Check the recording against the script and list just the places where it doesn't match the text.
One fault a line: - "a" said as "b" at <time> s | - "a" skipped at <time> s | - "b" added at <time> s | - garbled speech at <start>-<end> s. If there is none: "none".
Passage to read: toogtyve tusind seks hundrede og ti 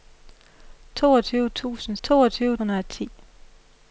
- "seks" said as "toogtyve" at 2.0 s